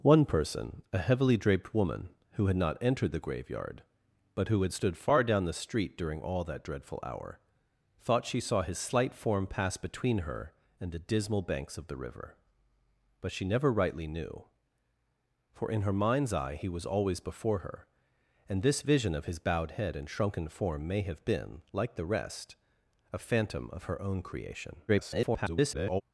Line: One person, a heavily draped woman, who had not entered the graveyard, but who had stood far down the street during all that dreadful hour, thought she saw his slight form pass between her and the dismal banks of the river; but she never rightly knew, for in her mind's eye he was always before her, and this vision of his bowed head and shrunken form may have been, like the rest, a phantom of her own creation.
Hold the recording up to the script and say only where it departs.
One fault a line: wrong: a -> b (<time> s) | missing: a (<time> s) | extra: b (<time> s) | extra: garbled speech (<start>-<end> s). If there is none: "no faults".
extra: garbled speech (24.9-26.0 s)